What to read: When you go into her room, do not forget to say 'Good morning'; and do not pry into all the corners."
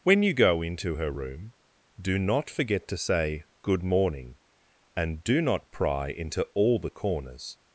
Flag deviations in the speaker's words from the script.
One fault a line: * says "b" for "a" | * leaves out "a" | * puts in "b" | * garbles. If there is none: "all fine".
all fine